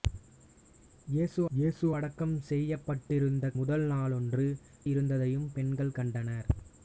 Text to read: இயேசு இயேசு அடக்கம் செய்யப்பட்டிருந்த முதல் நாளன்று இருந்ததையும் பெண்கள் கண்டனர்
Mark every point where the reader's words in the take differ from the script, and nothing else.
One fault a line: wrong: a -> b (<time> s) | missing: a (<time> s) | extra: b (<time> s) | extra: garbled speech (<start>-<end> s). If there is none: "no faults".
no faults